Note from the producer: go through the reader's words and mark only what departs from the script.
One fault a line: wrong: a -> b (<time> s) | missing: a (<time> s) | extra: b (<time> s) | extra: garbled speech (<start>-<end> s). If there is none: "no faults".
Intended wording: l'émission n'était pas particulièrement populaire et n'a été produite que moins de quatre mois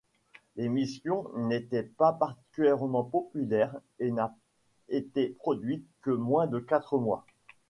no faults